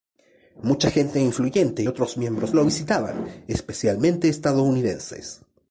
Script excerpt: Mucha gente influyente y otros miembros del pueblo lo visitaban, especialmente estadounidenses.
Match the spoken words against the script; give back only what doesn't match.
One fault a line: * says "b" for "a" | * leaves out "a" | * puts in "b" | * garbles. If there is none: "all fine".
* leaves out "y"
* leaves out "del pueblo"